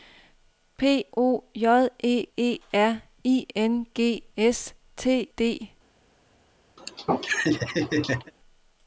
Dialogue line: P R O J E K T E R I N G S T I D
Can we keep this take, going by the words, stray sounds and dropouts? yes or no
no